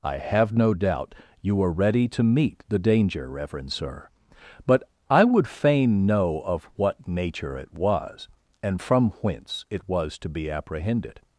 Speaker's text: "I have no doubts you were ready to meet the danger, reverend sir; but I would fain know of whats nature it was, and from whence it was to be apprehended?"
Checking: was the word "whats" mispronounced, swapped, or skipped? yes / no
yes